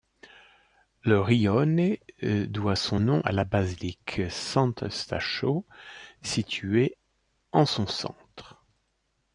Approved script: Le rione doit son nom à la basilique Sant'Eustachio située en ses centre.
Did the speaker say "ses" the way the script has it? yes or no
no